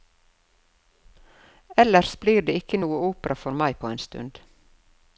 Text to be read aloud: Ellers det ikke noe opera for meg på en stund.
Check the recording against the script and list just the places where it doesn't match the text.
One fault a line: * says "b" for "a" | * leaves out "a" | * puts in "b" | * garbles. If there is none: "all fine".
* puts in "blir"